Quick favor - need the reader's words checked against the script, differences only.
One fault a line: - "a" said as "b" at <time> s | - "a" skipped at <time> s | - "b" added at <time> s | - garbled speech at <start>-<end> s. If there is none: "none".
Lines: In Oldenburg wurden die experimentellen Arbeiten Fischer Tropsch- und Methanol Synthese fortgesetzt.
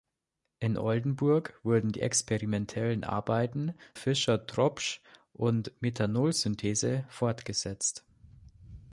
none